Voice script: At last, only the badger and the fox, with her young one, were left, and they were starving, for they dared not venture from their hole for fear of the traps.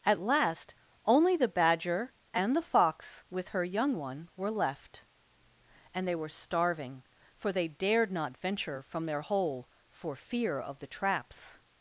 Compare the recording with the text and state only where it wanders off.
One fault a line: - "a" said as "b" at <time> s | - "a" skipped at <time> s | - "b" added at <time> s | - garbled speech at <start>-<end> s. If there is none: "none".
none